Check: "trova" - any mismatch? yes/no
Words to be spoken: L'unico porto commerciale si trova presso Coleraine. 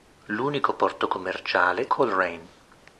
yes